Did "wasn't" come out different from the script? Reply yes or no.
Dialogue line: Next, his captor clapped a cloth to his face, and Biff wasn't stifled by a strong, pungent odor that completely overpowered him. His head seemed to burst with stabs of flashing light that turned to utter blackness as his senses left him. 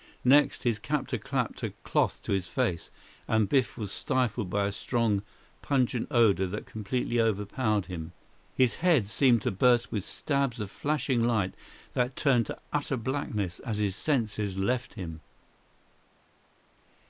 yes